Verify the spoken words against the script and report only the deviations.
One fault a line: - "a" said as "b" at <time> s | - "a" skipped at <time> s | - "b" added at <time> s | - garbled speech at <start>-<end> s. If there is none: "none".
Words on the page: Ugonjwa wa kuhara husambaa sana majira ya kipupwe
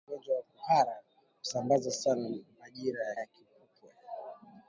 - "ya" added at 3.2 s